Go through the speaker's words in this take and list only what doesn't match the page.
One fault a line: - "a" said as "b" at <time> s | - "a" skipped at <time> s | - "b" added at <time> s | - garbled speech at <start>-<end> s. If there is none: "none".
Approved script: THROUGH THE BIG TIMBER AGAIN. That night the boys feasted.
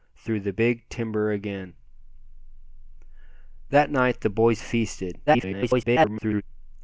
- garbled speech at 5.3-6.4 s